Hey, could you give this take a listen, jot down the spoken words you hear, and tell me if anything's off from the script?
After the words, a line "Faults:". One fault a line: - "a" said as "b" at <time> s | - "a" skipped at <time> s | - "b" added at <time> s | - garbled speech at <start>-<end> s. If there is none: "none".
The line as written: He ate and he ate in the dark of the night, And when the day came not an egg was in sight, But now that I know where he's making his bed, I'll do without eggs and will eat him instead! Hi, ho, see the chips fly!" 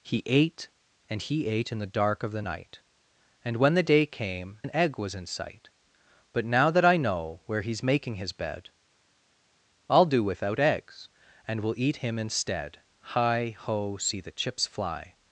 He ate and he ate in the dark of the night, And when the day came an egg was in sight, But now that I know where he's making his bed, I'll do without eggs and will eat him instead! Hi, ho, see the chips fly!"
Faults:
- "not" skipped at 4.6 s